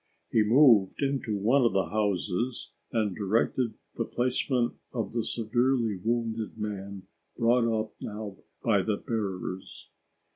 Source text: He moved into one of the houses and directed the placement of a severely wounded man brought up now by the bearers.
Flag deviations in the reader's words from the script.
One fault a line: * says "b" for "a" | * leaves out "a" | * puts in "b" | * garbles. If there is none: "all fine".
* says "the" for "a"